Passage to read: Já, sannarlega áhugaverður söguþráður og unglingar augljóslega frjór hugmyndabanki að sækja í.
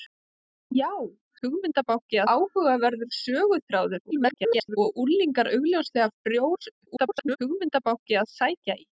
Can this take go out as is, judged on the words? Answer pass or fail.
fail